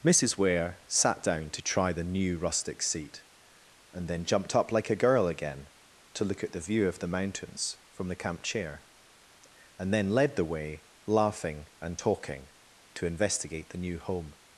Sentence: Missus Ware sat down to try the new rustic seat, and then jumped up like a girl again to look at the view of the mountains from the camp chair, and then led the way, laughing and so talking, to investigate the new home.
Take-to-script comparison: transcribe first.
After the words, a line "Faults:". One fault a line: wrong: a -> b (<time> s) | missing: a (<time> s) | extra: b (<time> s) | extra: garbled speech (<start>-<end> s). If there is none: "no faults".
Missus Ware sat down to try the new rustic seat, and then jumped up like a girl again to look at the view of the mountains from the camp chair, and then led the way, laughing and talking, to investigate the new home.
Faults:
missing: so (12.0 s)